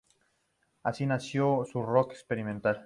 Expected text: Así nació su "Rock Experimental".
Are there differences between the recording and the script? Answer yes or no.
no